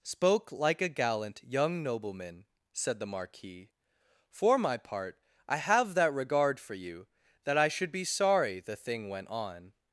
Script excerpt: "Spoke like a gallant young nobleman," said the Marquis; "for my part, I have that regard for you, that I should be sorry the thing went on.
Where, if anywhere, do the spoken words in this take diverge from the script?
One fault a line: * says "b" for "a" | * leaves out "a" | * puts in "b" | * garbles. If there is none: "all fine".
all fine